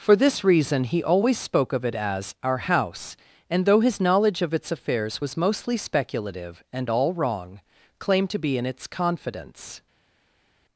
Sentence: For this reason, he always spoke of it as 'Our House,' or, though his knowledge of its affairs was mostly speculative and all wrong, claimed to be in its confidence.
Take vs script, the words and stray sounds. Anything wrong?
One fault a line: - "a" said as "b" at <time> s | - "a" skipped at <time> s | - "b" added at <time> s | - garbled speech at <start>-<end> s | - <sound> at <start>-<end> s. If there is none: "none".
- "or" said as "and" at 3.5 s